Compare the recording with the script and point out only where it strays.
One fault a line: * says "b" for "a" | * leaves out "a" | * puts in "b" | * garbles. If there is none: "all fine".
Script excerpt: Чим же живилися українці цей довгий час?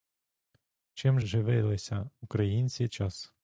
* leaves out "же"
* leaves out "цей довгий"